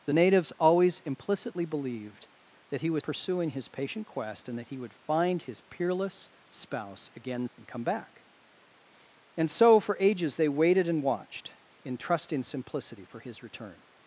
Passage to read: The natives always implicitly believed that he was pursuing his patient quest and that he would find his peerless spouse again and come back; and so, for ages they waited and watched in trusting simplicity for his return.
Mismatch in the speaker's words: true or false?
false